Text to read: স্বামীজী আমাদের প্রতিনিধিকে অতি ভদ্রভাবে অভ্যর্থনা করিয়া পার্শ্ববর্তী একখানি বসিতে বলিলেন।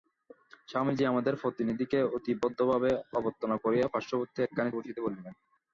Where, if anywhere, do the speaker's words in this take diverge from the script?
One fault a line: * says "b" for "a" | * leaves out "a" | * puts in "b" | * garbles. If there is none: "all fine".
all fine